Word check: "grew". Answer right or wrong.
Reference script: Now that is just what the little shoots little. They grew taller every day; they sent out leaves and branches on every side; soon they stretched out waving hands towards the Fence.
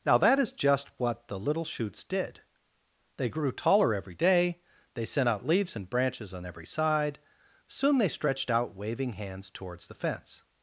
right